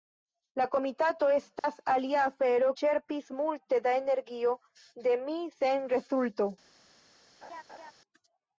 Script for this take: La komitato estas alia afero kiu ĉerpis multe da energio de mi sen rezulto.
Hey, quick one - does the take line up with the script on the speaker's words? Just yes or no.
no